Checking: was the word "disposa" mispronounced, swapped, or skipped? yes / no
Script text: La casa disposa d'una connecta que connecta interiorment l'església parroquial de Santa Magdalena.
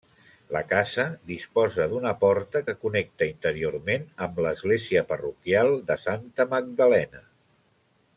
no